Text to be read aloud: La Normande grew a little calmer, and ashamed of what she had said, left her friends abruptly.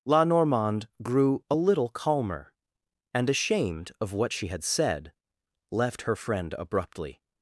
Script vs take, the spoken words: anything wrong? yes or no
yes